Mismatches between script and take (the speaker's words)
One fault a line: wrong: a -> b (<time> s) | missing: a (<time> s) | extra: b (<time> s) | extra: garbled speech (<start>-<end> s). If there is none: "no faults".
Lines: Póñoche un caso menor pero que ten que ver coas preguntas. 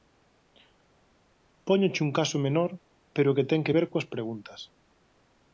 no faults